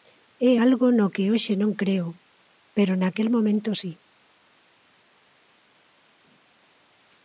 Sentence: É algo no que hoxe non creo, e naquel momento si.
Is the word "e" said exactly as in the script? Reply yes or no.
no